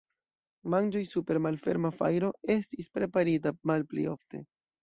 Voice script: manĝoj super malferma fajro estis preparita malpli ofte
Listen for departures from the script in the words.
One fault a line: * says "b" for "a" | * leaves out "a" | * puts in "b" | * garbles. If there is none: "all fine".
all fine